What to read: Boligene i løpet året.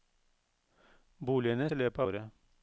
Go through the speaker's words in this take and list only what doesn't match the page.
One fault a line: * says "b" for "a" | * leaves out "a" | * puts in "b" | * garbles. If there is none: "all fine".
all fine